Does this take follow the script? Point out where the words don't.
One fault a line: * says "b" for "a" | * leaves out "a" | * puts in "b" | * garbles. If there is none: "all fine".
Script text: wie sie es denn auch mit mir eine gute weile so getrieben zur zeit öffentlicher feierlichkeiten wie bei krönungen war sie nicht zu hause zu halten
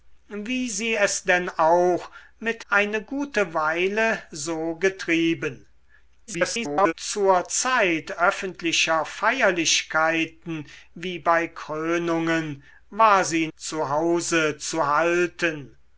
* leaves out "mir"
* garbles
* leaves out "nicht"